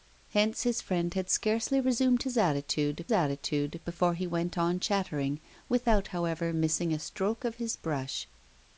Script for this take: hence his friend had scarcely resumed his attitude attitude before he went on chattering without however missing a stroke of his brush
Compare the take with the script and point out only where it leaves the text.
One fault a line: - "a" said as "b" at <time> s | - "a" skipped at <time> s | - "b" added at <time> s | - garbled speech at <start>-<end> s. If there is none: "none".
none